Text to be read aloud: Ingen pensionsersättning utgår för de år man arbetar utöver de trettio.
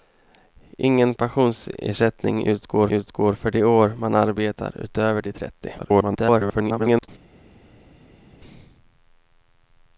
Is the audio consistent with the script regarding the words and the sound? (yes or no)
no